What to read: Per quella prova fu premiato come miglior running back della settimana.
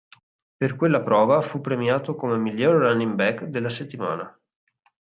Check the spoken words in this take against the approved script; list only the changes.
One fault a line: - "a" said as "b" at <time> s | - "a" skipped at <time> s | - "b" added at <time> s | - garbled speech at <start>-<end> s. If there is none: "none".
none